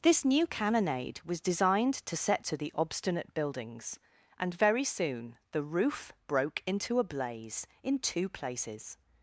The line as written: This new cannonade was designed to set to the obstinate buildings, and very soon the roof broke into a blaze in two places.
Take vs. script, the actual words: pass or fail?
pass